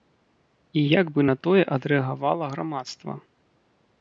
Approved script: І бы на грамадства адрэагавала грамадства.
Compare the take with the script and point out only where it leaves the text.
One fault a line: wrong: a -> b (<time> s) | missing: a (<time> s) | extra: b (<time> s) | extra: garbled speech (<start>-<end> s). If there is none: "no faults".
extra: як (1.0 s)
wrong: грамадства -> тое (1.5 s)